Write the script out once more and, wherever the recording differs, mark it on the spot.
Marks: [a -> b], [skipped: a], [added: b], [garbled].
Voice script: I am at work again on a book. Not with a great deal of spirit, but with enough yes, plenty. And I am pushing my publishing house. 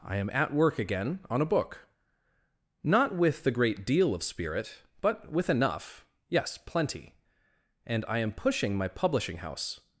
I am at work again on a book. Not with [a -> the] great deal of spirit, but with enough yes, plenty. And I am pushing my publishing house.